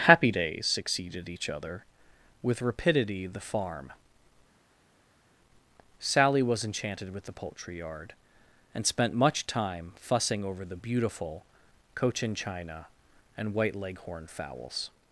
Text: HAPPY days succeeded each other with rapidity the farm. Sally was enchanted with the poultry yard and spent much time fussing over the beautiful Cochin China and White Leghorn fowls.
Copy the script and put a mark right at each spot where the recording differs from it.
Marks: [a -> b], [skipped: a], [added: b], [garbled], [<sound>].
HAPPY days succeeded each other with rapidity the farm. Sally was enchanted with the poultry yard and spent much time fussing over the beautiful Cochin China and White Leghorn fowls.